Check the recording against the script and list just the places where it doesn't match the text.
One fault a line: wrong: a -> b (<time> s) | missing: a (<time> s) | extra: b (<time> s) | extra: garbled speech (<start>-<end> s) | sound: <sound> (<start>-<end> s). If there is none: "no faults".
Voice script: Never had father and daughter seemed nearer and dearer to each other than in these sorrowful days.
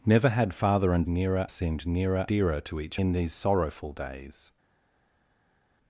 wrong: daughter -> nearer (1.1 s)
missing: and (2.3 s)
missing: other than (3.0 s)